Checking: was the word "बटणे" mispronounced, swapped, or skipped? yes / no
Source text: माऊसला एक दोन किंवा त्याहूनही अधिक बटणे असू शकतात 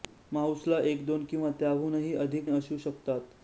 yes